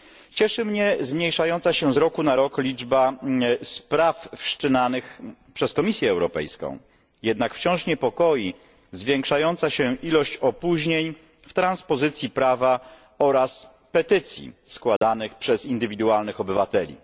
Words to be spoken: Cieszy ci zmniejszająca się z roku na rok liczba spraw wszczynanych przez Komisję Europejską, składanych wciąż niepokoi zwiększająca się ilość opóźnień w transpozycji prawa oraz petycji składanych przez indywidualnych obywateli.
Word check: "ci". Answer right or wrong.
wrong